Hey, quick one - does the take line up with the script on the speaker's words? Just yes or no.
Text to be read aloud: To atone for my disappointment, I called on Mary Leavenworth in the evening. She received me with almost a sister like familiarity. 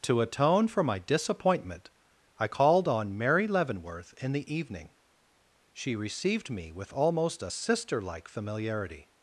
yes